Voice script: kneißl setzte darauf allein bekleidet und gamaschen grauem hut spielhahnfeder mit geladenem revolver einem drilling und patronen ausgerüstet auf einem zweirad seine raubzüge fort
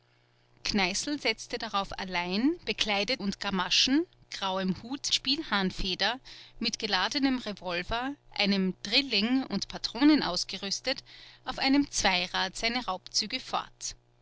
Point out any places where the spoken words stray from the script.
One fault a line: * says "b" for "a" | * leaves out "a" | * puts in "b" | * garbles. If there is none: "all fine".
all fine